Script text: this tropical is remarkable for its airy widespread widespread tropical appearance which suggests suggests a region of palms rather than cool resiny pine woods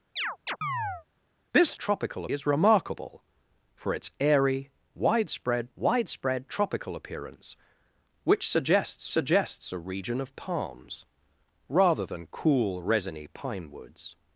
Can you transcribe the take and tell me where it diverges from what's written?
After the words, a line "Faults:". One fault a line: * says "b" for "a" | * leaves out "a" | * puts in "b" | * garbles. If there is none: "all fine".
this tropical is remarkable for its airy widespread widespread tropical appearance which suggests suggests a region of palms rather than cool resiny pine woods
Faults:
all fine